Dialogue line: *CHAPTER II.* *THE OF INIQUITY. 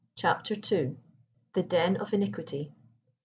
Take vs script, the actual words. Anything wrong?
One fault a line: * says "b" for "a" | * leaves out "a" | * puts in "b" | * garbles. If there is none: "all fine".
* puts in "DEN"